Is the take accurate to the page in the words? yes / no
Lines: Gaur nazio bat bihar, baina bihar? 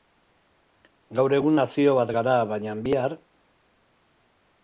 no